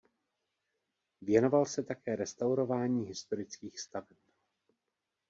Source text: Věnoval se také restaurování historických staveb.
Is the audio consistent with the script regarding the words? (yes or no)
yes